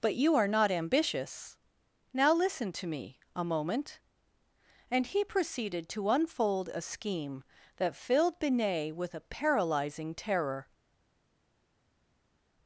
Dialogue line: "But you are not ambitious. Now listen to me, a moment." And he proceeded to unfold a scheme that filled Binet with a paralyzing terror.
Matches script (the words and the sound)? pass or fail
pass